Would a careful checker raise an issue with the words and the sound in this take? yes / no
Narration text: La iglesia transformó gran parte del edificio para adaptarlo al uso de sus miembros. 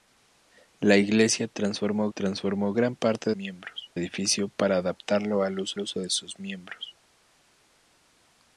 yes